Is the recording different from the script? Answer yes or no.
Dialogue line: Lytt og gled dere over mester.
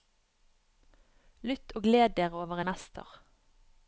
no